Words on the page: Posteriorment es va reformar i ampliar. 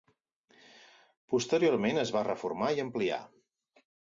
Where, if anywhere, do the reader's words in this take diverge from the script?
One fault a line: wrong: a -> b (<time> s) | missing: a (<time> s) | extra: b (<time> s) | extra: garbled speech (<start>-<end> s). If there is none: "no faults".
no faults